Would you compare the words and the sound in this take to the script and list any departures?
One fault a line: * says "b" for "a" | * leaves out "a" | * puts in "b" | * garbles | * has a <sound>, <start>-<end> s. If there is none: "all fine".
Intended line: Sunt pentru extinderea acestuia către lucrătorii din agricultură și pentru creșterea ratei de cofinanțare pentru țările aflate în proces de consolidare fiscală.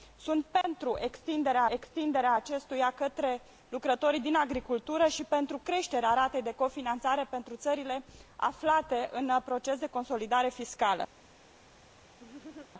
* has a dropout, 0.6-0.6 s
* puts in "extinderea"
* has a laugh, 12.2-12.7 s